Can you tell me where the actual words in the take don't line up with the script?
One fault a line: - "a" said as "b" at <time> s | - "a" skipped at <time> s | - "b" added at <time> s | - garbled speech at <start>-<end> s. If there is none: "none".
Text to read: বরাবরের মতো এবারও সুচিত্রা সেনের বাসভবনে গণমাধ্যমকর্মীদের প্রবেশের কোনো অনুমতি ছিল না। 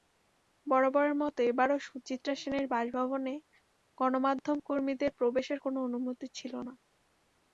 none